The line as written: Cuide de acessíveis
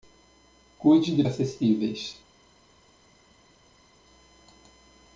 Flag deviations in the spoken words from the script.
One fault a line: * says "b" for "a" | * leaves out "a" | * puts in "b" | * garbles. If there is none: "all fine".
all fine